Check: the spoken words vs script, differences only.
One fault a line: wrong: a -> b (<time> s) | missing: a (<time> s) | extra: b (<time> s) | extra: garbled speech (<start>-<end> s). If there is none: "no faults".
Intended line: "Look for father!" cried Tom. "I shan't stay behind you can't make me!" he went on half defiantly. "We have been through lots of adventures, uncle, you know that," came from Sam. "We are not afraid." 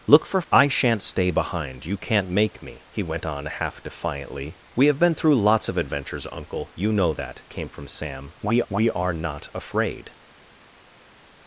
missing: father cried Tom (0.4 s)
extra: we (8.7 s)